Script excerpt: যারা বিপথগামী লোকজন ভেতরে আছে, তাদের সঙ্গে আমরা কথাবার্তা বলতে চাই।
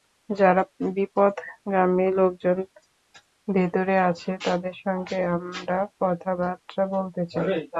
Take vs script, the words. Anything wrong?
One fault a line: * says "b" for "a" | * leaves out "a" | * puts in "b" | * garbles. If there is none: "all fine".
all fine